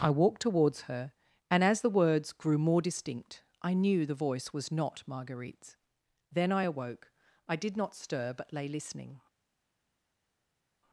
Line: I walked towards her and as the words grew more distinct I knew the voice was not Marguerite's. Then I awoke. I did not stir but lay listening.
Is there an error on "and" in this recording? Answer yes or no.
no